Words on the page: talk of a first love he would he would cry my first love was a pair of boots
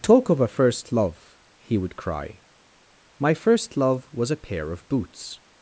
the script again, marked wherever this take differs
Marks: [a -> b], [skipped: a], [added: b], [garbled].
talk of a first love he would [skipped: he would] cry my first love was a pair of boots